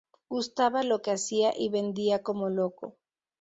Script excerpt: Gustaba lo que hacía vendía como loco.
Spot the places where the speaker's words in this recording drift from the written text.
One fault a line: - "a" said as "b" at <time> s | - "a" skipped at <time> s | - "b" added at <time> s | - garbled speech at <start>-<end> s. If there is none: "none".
- "y" added at 1.6 s